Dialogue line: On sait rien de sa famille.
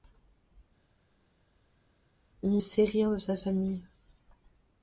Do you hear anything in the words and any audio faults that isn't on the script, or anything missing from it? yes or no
no